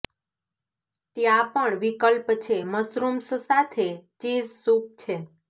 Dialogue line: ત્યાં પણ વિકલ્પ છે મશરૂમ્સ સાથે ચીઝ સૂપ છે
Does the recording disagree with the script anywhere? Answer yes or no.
no